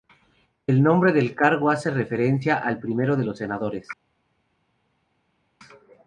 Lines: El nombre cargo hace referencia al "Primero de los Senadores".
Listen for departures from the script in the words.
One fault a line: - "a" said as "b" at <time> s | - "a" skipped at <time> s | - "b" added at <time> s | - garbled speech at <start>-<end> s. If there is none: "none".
- "del" added at 1.1 s